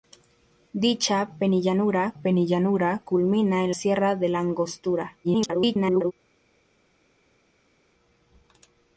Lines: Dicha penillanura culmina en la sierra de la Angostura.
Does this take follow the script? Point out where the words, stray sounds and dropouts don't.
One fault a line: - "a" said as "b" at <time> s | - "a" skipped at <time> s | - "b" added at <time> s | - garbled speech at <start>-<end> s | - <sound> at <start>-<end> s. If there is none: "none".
- "penillanura" added at 2.2 s
- "la" skipped at 3.7 s
- garbled speech at 5.2-6.1 s